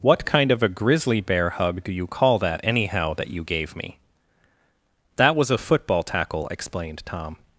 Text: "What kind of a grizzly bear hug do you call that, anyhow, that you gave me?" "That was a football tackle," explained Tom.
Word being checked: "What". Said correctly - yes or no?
yes